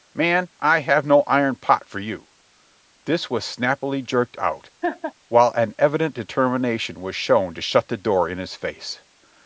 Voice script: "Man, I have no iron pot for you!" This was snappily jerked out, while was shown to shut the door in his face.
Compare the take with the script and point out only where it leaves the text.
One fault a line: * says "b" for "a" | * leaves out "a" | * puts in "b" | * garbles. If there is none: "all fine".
* puts in "an evident determination"